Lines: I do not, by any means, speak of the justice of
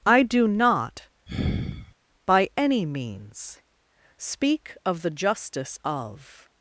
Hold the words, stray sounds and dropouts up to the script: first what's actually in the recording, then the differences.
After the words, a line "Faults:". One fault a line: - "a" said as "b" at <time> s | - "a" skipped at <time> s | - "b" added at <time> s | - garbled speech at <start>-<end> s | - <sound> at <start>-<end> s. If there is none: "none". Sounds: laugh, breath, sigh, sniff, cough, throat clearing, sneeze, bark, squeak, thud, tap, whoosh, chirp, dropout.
I do not, by any means, speak of the justice of
Faults:
- sigh at 1.3-1.9 s